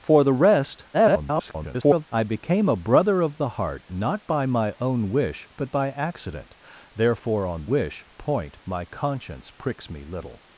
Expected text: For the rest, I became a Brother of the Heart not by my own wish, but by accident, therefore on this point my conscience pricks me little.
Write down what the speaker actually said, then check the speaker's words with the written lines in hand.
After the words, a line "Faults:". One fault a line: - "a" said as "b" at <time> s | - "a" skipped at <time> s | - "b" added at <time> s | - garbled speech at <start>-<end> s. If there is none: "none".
For the rest, [garbled] I became a Brother of the Heart not by my own wish, but by accident, therefore on wish point my conscience pricks me little.
Faults:
- garbled speech at 0.9-2.1 s
- "this" said as "wish" at 7.7 s